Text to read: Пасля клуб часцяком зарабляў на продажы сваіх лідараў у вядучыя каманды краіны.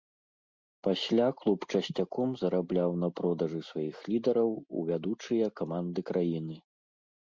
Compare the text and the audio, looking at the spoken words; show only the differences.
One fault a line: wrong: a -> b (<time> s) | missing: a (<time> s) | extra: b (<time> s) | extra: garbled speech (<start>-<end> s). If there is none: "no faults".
no faults